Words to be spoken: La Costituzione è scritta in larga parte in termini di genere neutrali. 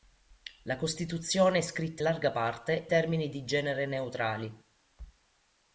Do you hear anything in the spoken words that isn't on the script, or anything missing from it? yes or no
yes